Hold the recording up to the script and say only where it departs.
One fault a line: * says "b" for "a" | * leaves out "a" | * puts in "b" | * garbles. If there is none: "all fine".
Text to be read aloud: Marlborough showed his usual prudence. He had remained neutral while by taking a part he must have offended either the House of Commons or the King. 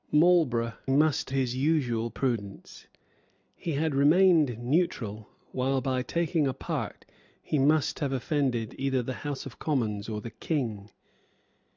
* says "must" for "showed"